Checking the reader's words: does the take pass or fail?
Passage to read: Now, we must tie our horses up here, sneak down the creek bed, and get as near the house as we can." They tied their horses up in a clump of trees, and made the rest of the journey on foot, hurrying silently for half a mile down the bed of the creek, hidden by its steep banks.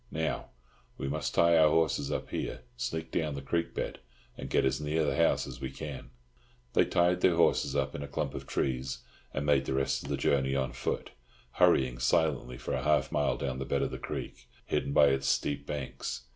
pass